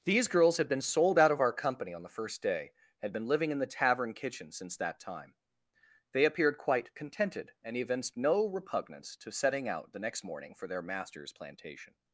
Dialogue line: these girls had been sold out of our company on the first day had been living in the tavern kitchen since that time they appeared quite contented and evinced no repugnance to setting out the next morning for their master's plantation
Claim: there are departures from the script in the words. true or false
false